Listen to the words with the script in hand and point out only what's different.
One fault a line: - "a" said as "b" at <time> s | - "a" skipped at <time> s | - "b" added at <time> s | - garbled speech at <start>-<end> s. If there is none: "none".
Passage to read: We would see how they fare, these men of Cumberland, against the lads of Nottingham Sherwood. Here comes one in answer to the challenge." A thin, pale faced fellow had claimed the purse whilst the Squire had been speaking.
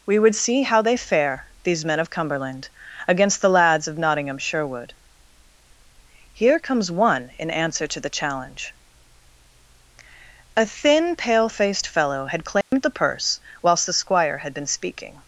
none